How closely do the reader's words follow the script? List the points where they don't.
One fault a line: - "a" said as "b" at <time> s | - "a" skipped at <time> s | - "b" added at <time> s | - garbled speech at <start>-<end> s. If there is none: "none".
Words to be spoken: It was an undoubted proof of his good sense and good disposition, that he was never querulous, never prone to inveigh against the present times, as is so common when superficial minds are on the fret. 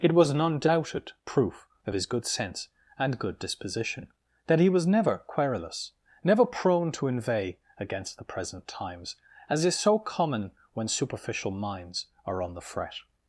none